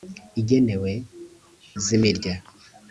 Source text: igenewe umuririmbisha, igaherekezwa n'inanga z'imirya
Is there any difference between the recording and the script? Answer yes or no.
yes